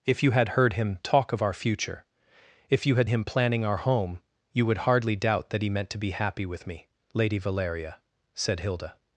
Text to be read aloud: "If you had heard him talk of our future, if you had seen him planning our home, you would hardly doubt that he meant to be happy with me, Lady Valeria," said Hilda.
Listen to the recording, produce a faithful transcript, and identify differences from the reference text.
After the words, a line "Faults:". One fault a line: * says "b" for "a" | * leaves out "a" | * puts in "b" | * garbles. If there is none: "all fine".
"If you had heard him talk of our future, if you had him planning our home, you would hardly doubt that he meant to be happy with me, Lady Valeria," said Hilda.
Faults:
* leaves out "seen"